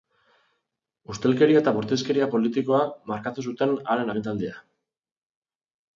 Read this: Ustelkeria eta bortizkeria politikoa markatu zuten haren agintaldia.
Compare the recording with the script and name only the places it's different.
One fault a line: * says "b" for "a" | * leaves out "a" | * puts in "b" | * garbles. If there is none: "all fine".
all fine